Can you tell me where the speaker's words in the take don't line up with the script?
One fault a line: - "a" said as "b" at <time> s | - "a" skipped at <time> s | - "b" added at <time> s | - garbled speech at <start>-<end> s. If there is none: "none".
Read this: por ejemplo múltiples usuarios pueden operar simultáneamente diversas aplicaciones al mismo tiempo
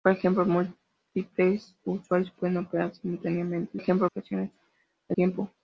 - "diversas" said as "ejemplo" at 3.8 s
- "mismo" skipped at 5.2 s